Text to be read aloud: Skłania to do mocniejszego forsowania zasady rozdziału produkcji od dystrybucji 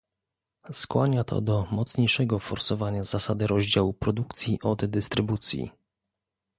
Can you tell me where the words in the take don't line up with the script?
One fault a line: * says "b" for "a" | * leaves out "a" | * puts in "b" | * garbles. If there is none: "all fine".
all fine